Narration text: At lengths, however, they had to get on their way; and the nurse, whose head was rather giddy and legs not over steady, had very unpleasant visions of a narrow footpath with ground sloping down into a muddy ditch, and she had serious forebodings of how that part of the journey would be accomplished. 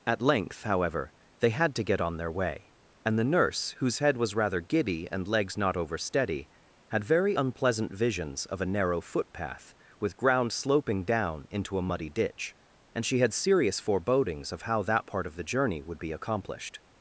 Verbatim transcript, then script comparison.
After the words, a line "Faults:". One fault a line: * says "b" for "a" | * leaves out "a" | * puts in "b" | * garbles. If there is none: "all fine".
At length, however, they had to get on their way; and the nurse, whose head was rather giddy and legs not over steady, had very unpleasant visions of a narrow footpath with ground sloping down into a muddy ditch, and she had serious forebodings of how that part of the journey would be accomplished.
Faults:
* says "length" for "lengths"